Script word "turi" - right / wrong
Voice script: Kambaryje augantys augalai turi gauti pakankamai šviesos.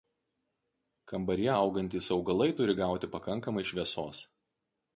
right